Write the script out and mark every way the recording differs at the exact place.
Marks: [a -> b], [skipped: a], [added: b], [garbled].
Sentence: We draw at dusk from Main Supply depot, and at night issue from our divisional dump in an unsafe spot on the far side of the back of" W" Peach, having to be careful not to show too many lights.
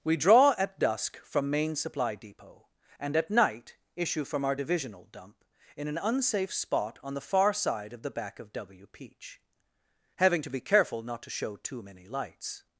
We draw at dusk from Main Supply depot, and at night issue from our divisional dump in an unsafe spot on the far side of the back of" W" Peach, having to be careful not to show too many lights.